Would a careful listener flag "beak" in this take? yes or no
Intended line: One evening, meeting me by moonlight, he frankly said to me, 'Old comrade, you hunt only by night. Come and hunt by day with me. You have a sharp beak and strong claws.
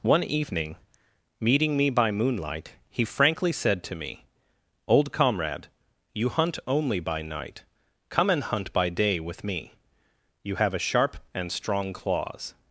yes